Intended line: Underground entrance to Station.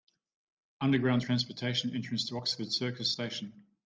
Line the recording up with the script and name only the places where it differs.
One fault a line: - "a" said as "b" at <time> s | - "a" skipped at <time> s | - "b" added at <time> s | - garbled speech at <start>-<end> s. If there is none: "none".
- "transportation" added at 1.2 s
- "Oxford Circus" added at 2.3 s